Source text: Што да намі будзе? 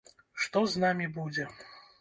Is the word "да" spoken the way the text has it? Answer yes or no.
no